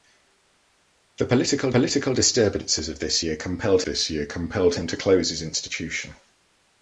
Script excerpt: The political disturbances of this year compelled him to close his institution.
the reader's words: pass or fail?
fail